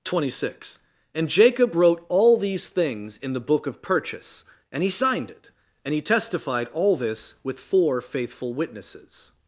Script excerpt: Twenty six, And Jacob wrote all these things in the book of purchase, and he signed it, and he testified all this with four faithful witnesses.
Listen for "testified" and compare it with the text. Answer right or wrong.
right